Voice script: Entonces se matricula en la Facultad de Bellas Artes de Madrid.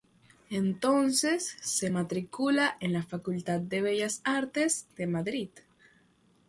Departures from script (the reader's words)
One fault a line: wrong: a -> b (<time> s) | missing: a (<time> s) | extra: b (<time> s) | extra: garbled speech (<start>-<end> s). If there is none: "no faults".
no faults